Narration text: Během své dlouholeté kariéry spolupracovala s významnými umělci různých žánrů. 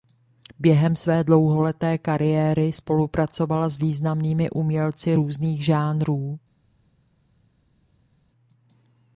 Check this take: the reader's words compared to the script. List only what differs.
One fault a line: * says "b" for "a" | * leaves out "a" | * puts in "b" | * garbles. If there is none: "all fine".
all fine